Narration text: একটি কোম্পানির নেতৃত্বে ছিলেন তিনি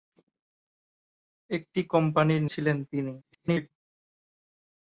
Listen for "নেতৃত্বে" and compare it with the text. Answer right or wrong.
wrong